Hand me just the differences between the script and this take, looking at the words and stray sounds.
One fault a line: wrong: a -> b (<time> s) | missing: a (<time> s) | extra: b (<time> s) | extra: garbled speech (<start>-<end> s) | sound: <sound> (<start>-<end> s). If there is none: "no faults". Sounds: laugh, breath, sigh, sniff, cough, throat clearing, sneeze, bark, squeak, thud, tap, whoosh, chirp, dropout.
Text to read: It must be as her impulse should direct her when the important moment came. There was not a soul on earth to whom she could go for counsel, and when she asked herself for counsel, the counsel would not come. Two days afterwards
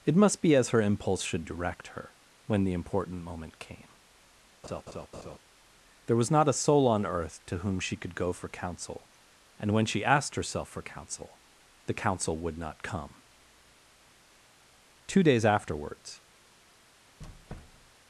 sound: laugh (4.6-5.4 s)
sound: squeak (17.2-18.0 s)